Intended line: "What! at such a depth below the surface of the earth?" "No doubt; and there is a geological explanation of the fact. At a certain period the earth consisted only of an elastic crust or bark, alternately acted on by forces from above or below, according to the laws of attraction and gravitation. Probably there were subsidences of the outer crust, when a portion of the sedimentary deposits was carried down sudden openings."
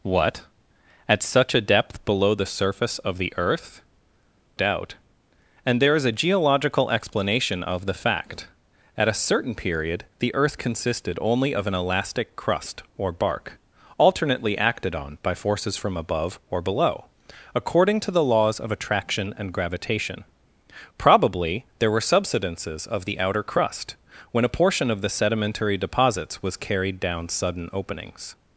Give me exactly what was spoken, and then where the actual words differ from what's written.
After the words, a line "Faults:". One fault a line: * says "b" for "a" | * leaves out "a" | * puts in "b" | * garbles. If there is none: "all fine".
"What! at such a depth below the surface of the earth?" "Doubt; and there is a geological explanation of the fact. At a certain period the earth consisted only of an elastic crust or bark, alternately acted on by forces from above or below, according to the laws of attraction and gravitation. Probably there were subsidences of the outer crust, when a portion of the sedimentary deposits was carried down sudden openings."
Faults:
* leaves out "No"